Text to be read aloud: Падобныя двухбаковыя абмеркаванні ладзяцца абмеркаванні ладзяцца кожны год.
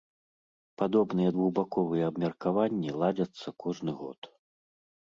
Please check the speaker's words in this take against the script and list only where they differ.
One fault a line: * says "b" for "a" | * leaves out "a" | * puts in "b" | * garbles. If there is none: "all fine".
* leaves out "абмеркаванні ладзяцца"